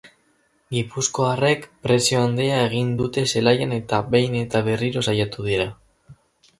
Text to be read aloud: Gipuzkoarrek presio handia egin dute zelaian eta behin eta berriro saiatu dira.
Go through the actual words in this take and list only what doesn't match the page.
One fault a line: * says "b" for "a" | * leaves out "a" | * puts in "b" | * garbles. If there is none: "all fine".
all fine